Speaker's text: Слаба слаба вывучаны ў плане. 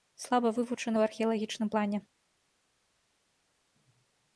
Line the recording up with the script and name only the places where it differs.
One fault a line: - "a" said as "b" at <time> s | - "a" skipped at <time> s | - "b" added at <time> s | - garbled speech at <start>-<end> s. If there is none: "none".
- "слаба" skipped at 0.5 s
- "археалагічным" added at 1.1 s